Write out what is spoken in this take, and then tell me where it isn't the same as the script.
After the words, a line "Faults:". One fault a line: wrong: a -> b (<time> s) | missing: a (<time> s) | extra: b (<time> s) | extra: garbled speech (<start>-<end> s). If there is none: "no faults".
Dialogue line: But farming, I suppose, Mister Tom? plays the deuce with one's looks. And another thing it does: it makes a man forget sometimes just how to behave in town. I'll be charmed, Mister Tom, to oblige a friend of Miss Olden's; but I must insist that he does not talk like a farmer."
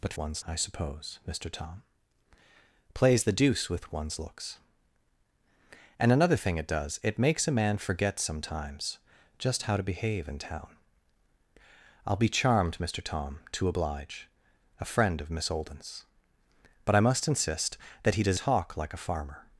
But one's, I suppose, Mister Tom? plays the deuce with one's looks. And another thing it does: it makes a man forget sometimes just how to behave in town. I'll be charmed, Mister Tom, to oblige a friend of Miss Olden's; but I must insist that he does talk like a farmer."
Faults:
wrong: farming -> one's (0.2 s)
missing: not (18.4 s)